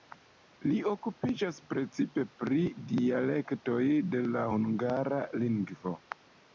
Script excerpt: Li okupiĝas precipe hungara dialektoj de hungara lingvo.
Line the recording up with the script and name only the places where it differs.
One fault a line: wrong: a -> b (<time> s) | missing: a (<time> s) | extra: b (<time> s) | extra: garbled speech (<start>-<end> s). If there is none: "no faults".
wrong: hungara -> pri (2.5 s)
extra: la (4.3 s)